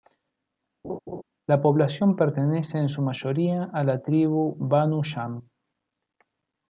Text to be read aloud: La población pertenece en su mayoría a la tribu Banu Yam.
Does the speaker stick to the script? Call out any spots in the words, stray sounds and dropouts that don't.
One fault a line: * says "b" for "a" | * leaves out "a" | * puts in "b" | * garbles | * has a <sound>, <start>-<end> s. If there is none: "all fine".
* has a laugh, 0.8-1.2 s